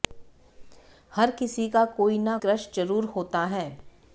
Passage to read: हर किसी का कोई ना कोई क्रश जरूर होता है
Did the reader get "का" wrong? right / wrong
right